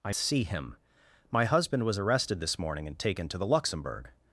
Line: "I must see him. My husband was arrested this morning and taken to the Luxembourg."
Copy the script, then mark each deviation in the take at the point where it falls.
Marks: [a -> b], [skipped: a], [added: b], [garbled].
"I [skipped: must] see him. My husband was arrested this morning and taken to the Luxembourg."